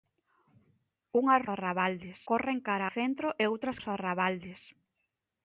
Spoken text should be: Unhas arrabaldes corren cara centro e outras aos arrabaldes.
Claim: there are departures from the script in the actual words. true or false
false